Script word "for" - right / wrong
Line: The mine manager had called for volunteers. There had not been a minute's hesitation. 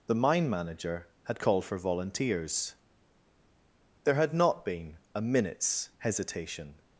right